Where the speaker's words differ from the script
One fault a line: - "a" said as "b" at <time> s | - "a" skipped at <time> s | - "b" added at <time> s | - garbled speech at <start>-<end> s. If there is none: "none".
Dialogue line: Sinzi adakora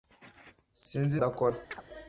none